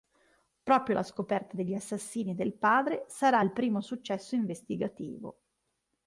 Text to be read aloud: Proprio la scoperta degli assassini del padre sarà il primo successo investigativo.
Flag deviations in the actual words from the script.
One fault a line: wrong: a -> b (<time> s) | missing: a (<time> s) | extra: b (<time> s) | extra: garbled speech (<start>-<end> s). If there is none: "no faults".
no faults